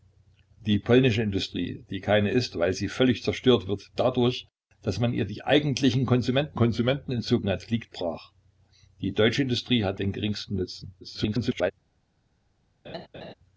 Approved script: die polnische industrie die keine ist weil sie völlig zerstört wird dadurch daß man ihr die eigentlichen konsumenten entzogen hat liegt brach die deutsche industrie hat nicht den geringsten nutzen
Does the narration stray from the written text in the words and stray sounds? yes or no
yes